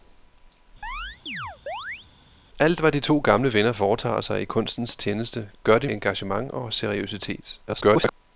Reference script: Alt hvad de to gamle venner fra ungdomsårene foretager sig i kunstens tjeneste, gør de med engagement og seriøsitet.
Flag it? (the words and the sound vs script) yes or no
yes